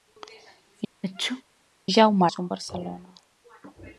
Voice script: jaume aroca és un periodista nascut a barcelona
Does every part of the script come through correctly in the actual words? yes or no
no